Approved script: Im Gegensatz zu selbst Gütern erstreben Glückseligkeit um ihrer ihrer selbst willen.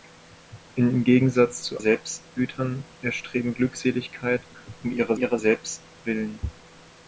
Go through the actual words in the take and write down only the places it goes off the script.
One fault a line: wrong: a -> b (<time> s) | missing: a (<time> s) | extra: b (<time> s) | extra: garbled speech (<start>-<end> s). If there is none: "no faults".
no faults